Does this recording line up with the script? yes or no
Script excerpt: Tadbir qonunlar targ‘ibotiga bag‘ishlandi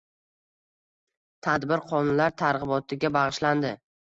yes